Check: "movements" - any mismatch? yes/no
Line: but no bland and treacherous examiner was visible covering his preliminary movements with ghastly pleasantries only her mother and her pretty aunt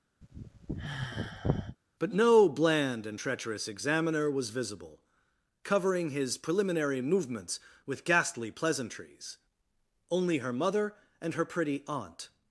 no